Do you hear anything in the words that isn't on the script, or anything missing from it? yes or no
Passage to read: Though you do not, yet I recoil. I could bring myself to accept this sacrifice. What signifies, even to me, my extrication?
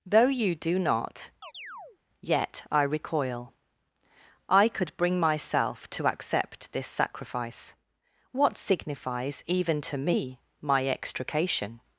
no